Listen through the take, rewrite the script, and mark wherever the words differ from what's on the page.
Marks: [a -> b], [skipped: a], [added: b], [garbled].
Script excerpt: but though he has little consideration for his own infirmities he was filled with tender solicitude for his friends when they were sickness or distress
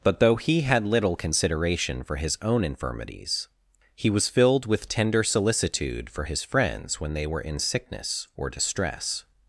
but though he [has -> had] little consideration for his own infirmities he was filled with tender solicitude for his friends when they were [added: in] sickness or distress